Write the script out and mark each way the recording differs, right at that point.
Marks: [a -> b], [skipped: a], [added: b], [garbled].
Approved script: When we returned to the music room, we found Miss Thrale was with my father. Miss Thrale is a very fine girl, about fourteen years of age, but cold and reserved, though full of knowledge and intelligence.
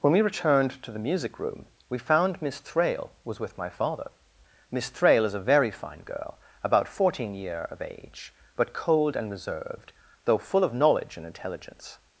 When we returned to the music room, we found Miss Thrale was with my father. Miss Thrale is a very fine girl, about fourteen [years -> year] of age, but cold and reserved, though full of knowledge and intelligence.